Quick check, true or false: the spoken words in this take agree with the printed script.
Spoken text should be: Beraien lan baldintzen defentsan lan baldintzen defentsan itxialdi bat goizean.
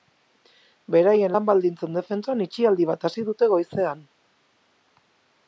false